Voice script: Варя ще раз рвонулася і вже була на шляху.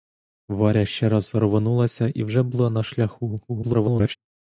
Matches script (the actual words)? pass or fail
fail